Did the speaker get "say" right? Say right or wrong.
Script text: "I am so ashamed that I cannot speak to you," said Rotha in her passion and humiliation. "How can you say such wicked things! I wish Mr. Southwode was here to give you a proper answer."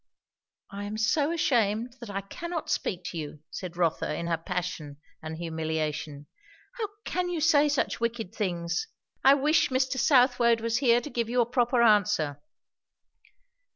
right